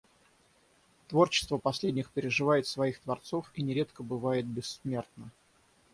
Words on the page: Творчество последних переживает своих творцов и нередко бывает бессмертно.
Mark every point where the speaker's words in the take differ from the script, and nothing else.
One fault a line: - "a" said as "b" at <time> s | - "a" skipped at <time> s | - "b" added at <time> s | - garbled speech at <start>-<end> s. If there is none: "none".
none